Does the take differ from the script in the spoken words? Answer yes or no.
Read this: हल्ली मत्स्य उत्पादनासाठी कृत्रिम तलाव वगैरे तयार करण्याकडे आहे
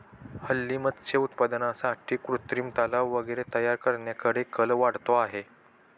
yes